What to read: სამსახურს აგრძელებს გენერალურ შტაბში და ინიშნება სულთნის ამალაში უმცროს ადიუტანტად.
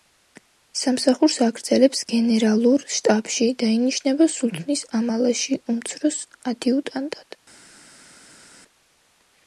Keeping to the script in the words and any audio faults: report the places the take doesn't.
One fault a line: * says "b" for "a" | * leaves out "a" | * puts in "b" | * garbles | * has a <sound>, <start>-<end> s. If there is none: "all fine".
all fine